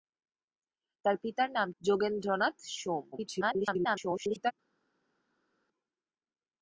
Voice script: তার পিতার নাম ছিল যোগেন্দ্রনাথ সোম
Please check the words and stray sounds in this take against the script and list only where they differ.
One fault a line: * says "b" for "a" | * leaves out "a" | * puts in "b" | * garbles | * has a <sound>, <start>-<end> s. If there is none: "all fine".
* leaves out "ছিল"
* garbles